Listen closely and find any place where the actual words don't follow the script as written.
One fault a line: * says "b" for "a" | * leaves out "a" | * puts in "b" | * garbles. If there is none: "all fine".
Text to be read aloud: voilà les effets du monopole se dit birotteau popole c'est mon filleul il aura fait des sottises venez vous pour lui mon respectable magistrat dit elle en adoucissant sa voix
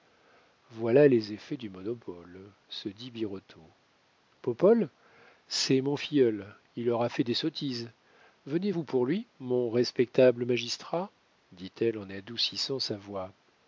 all fine